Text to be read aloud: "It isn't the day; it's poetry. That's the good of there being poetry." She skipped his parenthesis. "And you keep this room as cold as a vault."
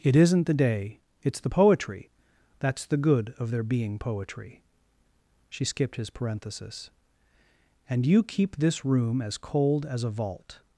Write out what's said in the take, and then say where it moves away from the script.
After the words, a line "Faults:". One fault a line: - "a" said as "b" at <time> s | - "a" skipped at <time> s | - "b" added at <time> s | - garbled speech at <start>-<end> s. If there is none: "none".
"It isn't the day; it's the poetry. That's the good of there being poetry." She skipped his parenthesis. "And you keep this room as cold as a vault."
Faults:
- "the" added at 1.4 s